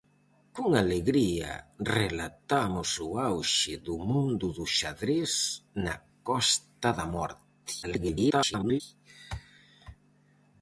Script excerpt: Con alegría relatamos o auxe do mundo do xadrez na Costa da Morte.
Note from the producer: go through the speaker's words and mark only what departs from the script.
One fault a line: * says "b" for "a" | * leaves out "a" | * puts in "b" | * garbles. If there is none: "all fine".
* garbles